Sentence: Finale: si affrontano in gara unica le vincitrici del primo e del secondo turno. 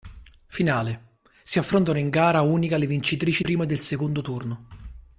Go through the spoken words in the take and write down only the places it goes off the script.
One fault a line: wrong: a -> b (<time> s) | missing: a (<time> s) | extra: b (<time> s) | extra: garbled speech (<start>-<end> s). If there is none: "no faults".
missing: del (3.4 s)